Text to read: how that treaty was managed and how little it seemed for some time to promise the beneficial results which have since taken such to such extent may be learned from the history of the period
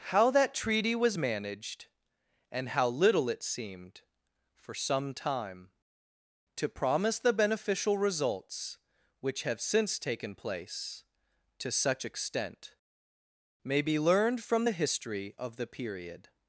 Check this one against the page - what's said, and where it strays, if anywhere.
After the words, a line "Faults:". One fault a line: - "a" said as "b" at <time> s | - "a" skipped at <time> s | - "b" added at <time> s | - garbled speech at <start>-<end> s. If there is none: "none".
how that treaty was managed and how little it seemed for some time to promise the beneficial results which have since taken place to such extent may be learned from the history of the period
Faults:
- "such" said as "place" at 10.3 s